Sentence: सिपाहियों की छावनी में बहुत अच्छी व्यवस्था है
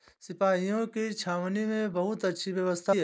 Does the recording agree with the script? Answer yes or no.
yes